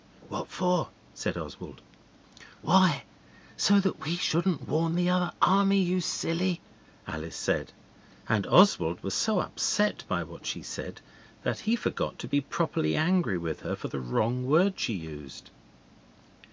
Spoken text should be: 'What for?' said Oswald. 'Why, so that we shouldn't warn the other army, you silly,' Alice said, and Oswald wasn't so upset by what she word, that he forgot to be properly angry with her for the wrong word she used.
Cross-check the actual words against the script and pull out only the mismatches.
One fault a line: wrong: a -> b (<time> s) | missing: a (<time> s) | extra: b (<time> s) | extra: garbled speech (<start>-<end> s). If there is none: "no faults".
wrong: wasn't -> was (9.0 s)
wrong: word -> said (10.6 s)